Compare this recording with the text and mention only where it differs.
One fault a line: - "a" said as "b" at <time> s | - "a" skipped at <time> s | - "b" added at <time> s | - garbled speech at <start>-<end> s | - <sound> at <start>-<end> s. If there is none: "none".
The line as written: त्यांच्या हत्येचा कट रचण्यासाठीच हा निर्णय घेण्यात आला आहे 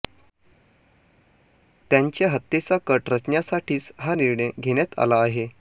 none